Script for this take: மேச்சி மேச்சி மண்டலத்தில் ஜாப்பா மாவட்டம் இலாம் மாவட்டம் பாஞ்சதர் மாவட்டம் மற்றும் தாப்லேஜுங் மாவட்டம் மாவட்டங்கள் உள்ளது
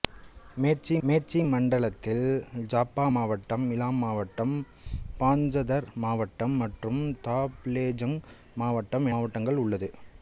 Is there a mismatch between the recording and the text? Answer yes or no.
no